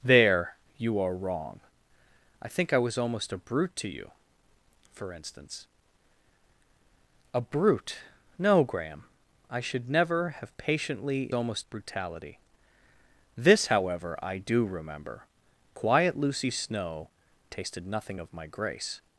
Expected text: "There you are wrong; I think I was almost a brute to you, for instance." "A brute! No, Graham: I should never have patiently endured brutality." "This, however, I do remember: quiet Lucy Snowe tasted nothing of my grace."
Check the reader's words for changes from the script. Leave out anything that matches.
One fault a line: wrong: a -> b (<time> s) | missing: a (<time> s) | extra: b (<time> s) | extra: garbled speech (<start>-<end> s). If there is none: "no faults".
wrong: endured -> almost (11.3 s)